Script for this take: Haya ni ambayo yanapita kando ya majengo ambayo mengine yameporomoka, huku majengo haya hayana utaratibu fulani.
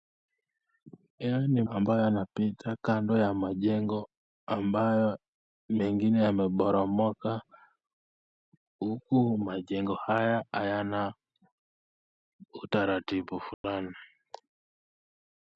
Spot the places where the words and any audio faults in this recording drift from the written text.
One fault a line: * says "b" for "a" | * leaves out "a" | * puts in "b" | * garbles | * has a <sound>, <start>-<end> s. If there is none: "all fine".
* has a dropout, 13.5-13.6 s